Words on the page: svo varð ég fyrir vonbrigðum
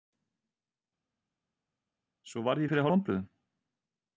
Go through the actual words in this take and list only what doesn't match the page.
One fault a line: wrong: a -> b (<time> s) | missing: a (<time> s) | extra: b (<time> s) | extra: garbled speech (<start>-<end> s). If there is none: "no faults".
no faults